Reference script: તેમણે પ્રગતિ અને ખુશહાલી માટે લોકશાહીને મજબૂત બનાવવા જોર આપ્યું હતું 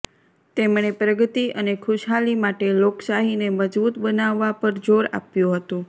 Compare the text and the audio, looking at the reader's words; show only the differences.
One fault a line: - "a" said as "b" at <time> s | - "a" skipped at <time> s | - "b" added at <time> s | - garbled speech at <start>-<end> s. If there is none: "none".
- "પર" added at 4.6 s